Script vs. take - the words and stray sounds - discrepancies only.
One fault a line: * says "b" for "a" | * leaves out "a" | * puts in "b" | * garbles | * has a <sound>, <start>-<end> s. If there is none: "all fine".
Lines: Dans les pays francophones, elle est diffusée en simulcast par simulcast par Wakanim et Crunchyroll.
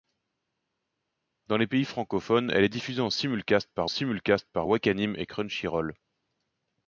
all fine